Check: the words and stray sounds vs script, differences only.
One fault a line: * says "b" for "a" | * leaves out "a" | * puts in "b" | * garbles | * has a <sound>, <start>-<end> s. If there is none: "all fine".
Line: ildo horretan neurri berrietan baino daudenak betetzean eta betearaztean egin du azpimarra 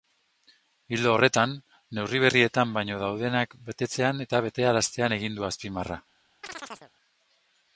* has a chirp, 6.4-6.9 s